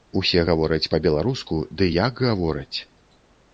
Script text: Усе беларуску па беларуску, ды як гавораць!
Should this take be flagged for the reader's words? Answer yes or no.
yes